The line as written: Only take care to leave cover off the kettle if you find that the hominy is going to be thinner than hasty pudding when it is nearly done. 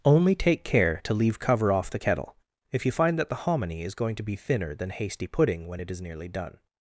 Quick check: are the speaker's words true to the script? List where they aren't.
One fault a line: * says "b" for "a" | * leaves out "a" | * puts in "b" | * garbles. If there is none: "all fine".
all fine